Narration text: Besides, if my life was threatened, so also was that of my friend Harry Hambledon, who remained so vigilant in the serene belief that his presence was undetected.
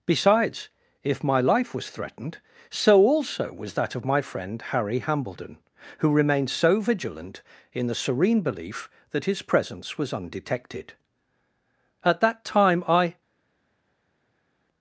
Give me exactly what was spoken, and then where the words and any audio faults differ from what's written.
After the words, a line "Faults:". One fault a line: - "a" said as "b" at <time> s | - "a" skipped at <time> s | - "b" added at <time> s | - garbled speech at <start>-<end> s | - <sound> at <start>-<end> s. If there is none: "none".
Besides, if my life was threatened, so also was that of my friend Harry Hambledon, who remained so vigilant in the serene belief that his presence was undetected. At that time I
Faults:
- "At that time I" added at 12.0 s